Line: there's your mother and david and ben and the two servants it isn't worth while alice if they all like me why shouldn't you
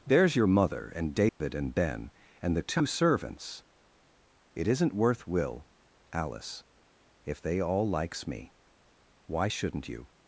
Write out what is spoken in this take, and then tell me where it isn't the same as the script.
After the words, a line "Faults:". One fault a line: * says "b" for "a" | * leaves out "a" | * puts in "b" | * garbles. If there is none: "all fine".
there's your mother and david and ben and the two servants it isn't worth will alice if they all likes me why shouldn't you
Faults:
* says "will" for "while"
* says "likes" for "like"